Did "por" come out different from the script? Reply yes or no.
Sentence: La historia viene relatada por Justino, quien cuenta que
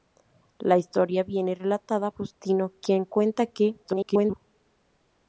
yes